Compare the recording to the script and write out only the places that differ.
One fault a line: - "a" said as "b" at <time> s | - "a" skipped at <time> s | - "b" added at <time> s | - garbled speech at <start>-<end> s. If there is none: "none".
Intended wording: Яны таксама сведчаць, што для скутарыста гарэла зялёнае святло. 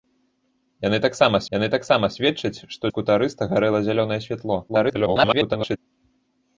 - "яны таксама" added at 1.5 s
- "для" skipped at 2.8 s
- garbled speech at 4.7-5.8 s